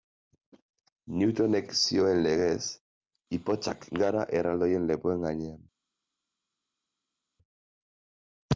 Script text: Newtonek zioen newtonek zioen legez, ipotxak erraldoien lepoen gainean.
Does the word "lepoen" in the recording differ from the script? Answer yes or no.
no